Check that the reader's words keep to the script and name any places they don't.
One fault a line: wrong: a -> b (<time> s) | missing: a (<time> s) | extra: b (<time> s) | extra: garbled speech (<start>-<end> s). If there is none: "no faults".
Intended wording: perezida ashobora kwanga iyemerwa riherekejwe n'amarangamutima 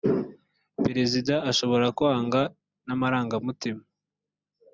missing: iyemerwa riherekejwe (2.4 s)